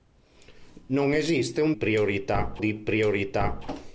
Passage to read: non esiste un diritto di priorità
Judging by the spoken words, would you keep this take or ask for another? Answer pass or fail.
fail